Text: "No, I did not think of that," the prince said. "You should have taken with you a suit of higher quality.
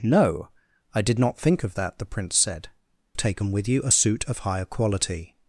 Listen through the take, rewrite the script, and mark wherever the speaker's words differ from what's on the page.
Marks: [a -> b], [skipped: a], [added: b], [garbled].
"No, I did not think of that," the prince said. [skipped: "You should have] taken with you a suit of higher quality.